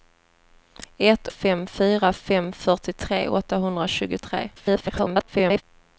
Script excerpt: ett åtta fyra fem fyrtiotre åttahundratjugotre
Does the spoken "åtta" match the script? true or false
false